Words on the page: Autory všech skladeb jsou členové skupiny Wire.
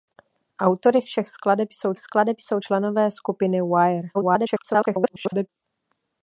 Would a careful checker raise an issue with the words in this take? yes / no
yes